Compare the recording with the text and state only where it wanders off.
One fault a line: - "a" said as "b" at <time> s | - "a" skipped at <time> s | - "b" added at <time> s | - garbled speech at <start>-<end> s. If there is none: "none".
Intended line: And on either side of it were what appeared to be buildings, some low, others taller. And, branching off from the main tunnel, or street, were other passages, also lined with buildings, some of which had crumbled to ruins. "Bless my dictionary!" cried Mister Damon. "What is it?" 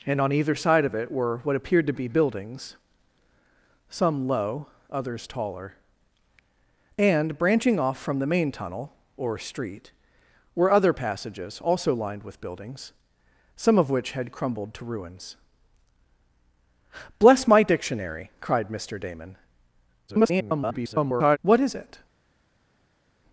- garbled speech at 20.1-21.4 s